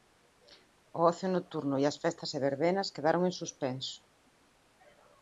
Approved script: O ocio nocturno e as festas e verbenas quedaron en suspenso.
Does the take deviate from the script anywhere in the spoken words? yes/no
no